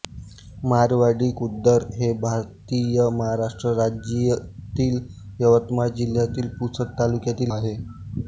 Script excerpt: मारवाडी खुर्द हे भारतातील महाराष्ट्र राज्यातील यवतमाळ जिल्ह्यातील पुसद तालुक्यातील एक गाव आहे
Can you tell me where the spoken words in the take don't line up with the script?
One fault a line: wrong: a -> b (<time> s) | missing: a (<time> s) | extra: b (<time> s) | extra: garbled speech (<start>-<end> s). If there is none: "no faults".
missing: एक गाव (7.5 s)